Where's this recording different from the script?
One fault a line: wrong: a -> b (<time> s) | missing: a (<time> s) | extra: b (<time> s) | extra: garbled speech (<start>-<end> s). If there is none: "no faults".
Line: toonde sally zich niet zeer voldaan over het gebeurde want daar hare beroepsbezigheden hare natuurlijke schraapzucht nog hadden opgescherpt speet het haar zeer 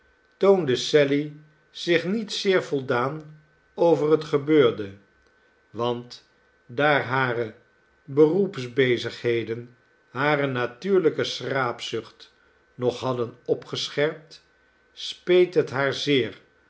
no faults